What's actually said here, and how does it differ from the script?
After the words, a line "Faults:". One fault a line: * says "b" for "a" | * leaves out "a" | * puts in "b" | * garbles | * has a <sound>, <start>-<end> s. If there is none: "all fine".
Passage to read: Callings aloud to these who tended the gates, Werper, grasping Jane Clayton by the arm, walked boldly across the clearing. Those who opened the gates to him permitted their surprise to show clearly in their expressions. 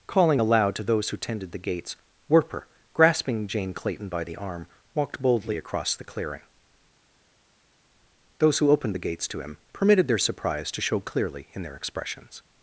Calling aloud to those who tended the gates, Werper, grasping Jane Clayton by the arm, walked boldly across the clearing. Those who opened the gates to him permitted their surprise to show clearly in their expressions.
Faults:
* says "Calling" for "Callings"
* says "those" for "these"